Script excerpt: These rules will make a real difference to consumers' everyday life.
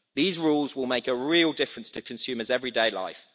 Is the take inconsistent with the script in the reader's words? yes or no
no